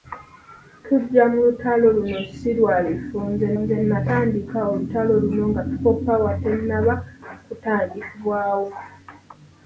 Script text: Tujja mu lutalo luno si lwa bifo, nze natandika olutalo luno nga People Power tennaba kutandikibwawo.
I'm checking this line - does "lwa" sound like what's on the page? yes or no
yes